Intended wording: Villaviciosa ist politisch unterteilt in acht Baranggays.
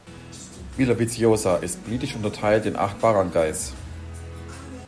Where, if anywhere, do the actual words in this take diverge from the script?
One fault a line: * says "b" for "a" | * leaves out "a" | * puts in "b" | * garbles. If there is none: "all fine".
all fine